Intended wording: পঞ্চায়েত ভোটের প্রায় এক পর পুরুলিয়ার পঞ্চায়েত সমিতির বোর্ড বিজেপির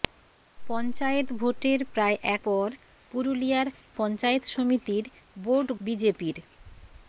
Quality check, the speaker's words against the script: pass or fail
pass